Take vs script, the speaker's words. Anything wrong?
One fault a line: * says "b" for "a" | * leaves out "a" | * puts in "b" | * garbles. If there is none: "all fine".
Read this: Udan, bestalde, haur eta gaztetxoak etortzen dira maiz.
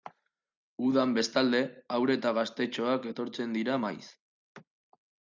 all fine